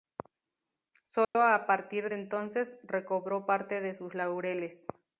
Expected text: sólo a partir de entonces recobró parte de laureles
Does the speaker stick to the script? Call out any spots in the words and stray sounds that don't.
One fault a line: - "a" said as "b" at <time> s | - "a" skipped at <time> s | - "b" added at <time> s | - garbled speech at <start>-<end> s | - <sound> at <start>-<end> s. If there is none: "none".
- dropout at 1.2-1.4 s
- "sus" added at 3.9 s